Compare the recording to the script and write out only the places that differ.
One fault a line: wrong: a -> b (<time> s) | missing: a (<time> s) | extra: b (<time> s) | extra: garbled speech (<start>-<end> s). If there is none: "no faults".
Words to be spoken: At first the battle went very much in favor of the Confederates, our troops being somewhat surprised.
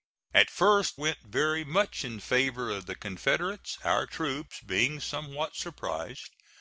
missing: the battle (1.0 s)